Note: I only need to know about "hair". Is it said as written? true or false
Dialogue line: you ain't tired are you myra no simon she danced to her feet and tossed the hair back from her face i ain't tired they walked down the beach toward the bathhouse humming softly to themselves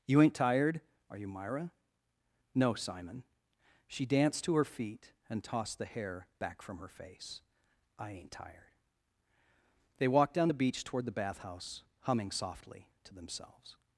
true